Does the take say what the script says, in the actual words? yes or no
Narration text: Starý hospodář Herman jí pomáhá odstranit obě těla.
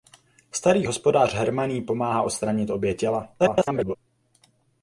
no